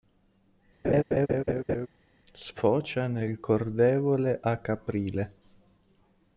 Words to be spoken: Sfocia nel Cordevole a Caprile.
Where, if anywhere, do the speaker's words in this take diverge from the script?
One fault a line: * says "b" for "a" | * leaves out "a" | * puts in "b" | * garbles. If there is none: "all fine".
all fine